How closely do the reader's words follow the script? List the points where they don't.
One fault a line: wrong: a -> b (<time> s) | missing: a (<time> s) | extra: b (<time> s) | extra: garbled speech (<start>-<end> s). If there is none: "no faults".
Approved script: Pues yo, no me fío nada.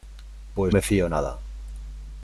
missing: yo no (0.8 s)